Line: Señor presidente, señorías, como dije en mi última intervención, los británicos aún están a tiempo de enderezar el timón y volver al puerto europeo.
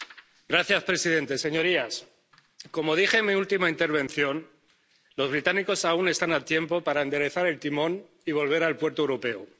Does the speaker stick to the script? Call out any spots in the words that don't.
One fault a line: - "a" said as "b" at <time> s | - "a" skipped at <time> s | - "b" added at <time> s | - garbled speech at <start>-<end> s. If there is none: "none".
none